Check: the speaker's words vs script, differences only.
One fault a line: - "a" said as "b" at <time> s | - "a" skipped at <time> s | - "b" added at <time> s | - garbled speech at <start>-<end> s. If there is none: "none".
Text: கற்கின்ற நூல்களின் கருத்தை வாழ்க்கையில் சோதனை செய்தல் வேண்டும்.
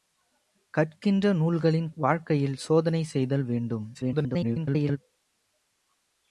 - "கருத்தை" skipped at 1.9 s
- garbled speech at 3.9-5.0 s